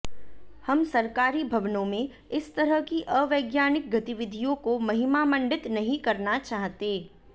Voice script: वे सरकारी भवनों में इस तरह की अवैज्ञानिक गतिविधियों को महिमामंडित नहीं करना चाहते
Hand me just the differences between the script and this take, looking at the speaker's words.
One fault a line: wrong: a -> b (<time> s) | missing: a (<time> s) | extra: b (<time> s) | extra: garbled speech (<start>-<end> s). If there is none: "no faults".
wrong: वे -> हम (0.7 s)